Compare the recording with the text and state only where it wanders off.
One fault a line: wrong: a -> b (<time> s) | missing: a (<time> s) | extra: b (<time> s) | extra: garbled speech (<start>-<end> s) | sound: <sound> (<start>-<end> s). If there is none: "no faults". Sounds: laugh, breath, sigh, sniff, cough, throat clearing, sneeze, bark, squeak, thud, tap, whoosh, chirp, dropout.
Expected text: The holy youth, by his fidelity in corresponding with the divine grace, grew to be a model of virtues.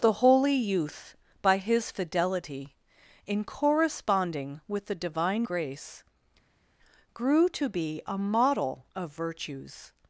no faults